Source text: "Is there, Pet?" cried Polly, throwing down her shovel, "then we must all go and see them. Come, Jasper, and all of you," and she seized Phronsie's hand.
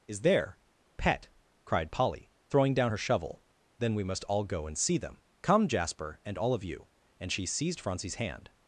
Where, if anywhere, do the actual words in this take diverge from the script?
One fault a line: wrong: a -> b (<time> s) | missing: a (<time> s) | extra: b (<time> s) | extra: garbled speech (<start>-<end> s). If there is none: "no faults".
no faults